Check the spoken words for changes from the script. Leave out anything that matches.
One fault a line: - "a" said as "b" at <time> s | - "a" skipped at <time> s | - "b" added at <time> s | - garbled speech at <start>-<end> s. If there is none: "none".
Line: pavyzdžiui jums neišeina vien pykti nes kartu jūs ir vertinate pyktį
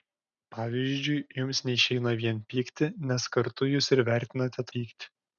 none